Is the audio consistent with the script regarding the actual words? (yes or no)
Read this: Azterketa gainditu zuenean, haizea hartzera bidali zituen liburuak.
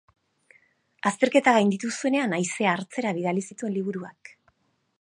yes